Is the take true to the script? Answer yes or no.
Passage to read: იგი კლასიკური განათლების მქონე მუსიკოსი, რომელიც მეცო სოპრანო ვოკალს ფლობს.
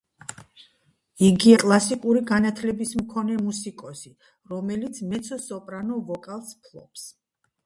yes